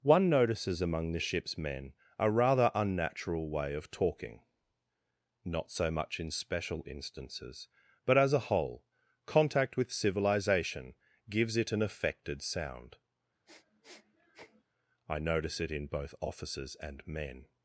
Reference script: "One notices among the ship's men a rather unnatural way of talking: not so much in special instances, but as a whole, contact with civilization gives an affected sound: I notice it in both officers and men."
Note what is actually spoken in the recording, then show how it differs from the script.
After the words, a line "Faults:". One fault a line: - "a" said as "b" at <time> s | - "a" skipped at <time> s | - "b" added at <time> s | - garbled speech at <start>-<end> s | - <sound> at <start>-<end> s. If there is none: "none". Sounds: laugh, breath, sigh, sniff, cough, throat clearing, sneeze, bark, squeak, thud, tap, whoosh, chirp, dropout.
"One notices among the ship's men a rather unnatural way of talking: not so much in special instances, but as a whole, contact with civilization gives it an affected sound: I notice it in both officers and men."
Faults:
- "it" added at 11.6 s
- sniff at 13.5-14.6 s